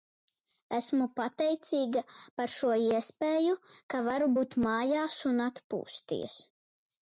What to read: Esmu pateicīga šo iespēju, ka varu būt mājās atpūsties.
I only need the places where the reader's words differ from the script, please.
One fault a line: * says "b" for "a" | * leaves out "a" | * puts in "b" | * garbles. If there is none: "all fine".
* puts in "par"
* puts in "un"